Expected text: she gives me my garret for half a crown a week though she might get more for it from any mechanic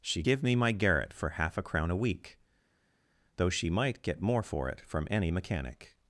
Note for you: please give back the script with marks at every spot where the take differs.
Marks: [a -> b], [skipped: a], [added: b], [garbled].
she [gives -> give] me my garret for half a crown a week though she might get more for it from any mechanic